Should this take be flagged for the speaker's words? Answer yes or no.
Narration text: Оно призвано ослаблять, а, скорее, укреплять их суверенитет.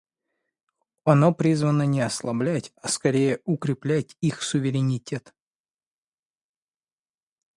yes